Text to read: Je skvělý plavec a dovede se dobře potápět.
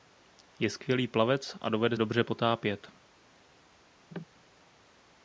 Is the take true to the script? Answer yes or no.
no